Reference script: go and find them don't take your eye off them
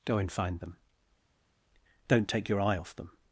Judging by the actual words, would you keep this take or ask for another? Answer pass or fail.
pass